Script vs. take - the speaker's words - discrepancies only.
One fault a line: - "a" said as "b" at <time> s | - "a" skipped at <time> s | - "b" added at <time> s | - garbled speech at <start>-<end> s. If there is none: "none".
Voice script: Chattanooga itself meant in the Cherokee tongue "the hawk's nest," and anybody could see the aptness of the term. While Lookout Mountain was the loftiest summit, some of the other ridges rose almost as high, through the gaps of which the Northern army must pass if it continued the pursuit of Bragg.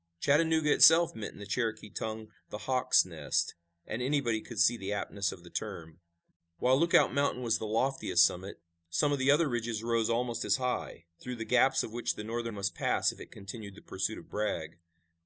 - "army" skipped at 12.5 s